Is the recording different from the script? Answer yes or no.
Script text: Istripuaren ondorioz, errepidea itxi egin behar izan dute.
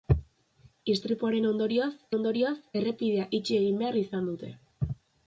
yes